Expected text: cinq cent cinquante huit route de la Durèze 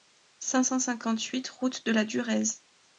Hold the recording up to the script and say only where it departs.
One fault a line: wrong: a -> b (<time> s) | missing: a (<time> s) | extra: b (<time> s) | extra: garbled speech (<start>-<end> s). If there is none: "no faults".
no faults